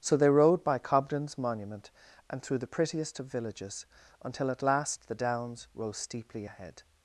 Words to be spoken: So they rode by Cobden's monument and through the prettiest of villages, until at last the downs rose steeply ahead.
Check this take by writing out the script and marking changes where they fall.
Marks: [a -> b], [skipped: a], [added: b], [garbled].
So they rode by Cobden's monument and through the prettiest of villages, until at last the downs rose steeply ahead.